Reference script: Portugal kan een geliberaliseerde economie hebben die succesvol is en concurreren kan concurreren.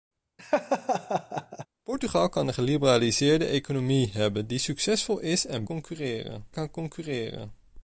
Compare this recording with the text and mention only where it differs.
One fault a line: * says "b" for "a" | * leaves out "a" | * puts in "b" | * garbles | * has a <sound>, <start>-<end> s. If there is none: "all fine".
* has a laugh, 0.4-1.7 s